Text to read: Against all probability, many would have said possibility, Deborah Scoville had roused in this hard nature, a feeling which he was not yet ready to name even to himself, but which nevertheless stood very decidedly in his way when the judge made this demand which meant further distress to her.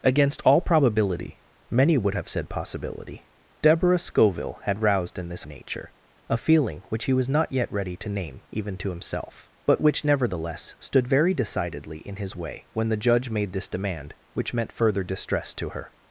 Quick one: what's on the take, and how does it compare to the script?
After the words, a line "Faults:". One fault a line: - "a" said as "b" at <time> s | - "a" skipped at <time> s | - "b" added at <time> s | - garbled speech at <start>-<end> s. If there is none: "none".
Against all probability, many would have said possibility, Deborah Scoville had roused in this nature, a feeling which he was not yet ready to name even to himself, but which nevertheless stood very decidedly in his way when the judge made this demand which meant further distress to her.
Faults:
- "hard" skipped at 5.4 s